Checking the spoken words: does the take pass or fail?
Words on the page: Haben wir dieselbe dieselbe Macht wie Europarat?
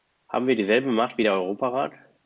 fail